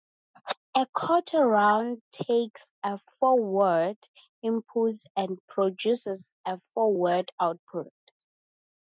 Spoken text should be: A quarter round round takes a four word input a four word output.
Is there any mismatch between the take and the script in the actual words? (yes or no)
yes